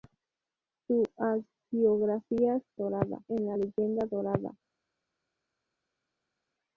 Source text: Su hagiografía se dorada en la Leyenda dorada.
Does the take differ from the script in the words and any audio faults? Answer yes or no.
no